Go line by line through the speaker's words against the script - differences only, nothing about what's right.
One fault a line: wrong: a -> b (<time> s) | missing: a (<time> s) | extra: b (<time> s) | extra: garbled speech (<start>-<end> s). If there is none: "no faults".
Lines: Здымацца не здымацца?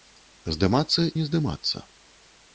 no faults